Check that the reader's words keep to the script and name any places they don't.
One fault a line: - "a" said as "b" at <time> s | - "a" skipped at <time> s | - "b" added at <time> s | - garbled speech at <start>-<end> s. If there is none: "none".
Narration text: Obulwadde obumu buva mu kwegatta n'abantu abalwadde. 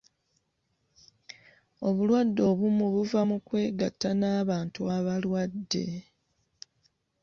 none